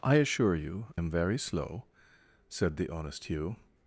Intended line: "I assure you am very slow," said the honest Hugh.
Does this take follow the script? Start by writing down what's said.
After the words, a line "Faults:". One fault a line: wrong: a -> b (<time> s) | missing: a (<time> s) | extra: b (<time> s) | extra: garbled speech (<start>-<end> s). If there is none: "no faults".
"I assure you am very slow," said the honest Hugh.
Faults:
no faults